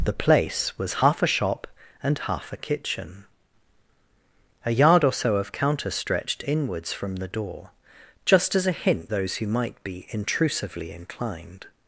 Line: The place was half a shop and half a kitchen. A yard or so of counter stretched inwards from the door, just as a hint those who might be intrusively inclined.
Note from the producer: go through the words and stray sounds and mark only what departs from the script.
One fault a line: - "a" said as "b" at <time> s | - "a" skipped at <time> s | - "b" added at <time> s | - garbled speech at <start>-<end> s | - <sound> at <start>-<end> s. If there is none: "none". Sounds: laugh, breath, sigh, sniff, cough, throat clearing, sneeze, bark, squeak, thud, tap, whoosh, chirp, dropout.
none